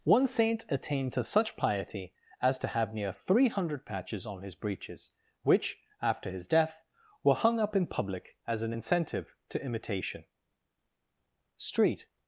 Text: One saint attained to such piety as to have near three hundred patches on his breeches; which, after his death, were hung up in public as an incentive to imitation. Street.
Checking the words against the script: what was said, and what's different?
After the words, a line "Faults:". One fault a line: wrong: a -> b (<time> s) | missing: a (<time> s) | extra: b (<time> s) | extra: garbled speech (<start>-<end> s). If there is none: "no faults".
One saint attained to such piety as to have near three hundred patches on his breeches; which, after his death, were hung up in public as an incentive to imitation. Street.
Faults:
no faults